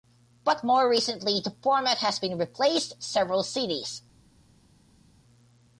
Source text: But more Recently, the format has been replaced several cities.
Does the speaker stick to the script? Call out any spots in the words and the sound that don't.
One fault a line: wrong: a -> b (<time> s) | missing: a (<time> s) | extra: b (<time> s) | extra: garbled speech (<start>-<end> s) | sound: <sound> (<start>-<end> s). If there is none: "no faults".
no faults